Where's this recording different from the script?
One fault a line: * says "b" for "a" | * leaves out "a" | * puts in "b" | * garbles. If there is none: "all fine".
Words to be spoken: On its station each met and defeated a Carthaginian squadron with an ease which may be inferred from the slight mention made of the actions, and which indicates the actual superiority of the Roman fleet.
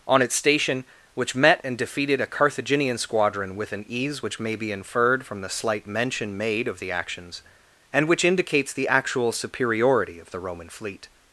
* says "which" for "each"